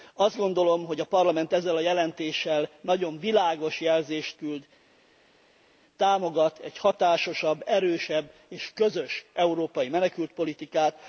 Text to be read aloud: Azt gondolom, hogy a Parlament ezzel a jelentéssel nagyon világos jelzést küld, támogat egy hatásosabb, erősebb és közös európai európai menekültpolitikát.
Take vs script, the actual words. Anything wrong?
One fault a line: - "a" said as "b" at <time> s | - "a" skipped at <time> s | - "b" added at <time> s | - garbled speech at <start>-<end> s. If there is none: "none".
- "európai" skipped at 9.9 s